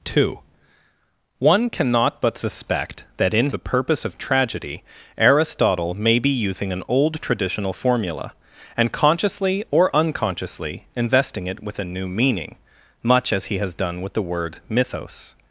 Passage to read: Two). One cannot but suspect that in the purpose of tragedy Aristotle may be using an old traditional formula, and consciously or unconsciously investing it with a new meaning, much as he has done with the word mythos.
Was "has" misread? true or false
false